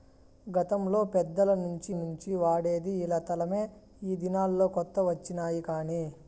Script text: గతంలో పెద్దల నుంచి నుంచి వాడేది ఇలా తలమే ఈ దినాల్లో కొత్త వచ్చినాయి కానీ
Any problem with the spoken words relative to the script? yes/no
no